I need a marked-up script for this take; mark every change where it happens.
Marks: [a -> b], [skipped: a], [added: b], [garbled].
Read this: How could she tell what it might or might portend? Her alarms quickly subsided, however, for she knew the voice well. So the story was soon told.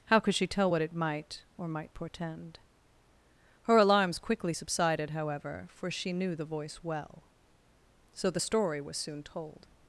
How could she tell what it might or might portend? Her alarms quickly subsided, however, for she knew the voice well. So the story was soon told.